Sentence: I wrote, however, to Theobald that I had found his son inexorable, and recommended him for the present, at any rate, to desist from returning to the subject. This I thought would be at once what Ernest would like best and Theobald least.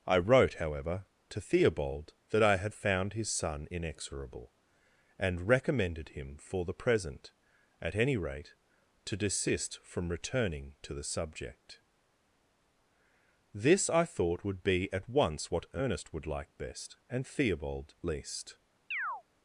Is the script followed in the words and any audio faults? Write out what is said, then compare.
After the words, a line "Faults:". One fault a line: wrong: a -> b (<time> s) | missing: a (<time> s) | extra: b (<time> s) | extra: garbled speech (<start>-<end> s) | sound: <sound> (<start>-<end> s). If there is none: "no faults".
I wrote, however, to Theobald that I had found his son inexorable, and recommended him for the present, at any rate, to desist from returning to the subject. This I thought would be at once what Ernest would like best and Theobald least.
Faults:
sound: chirp (18.9-19.2 s)